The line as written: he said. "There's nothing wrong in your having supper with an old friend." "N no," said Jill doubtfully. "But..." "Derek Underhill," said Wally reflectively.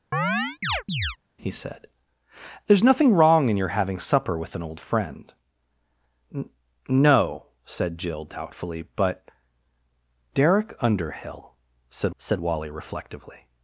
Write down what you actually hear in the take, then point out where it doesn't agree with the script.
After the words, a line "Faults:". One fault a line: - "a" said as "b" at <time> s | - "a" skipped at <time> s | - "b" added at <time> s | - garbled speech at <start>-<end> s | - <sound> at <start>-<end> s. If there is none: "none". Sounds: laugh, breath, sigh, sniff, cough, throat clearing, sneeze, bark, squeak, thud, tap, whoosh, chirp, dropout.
he said. "There's nothing wrong in your having supper with an old friend." "N no," said Jill doubtfully. "But..." "Derek Underhill," said said Wally reflectively.
Faults:
- chirp at 0.1-1.2 s
- "said" added at 12.2 s